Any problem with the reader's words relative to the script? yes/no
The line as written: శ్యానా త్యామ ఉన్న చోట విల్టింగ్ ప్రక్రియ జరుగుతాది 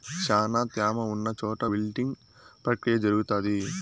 no